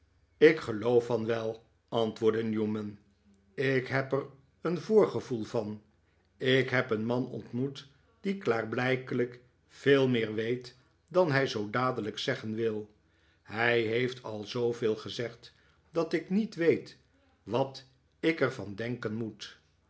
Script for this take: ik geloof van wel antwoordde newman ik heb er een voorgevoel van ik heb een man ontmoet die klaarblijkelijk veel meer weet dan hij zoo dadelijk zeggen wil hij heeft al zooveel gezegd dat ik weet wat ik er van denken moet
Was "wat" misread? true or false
false